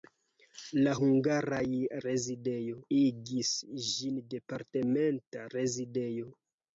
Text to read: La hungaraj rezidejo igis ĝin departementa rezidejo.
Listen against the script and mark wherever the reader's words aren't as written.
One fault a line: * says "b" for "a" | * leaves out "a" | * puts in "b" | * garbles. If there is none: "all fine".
all fine